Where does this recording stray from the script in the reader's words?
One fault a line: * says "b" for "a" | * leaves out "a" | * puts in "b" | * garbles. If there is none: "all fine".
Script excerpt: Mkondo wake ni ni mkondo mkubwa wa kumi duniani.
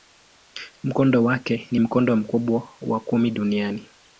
* leaves out "ni"